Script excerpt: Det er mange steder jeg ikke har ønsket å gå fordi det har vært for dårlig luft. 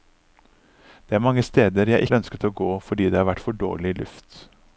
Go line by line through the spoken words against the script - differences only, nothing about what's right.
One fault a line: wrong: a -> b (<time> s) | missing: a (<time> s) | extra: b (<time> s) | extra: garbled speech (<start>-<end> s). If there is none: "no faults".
missing: ikke (2.1 s)